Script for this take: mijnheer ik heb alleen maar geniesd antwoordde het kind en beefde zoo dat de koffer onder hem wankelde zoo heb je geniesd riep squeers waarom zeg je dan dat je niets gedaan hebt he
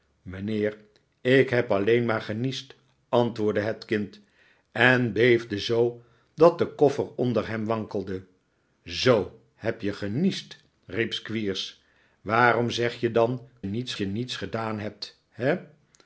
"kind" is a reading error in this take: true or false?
false